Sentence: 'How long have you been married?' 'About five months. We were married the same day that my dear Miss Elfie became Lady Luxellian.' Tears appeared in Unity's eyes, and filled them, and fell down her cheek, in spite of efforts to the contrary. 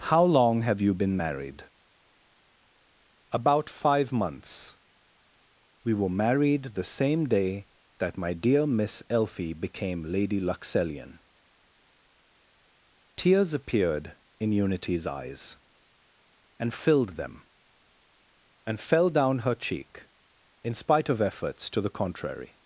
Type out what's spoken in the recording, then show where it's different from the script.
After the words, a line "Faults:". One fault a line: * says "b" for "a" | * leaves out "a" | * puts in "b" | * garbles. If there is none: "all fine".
'How long have you been married?' 'About five months. We were married the same day that my dear Miss Elfie became Lady Luxellian.' Tears appeared in Unity's eyes, and filled them, and fell down her cheek, in spite of efforts to the contrary.
Faults:
all fine